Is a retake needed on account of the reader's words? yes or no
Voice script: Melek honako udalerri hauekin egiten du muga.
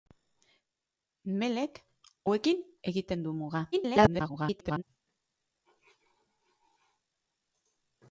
yes